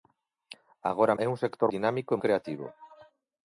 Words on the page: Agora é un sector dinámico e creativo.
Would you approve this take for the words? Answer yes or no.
yes